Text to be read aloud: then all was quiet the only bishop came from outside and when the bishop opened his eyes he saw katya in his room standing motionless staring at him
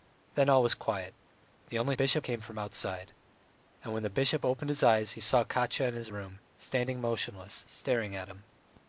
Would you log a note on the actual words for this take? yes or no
no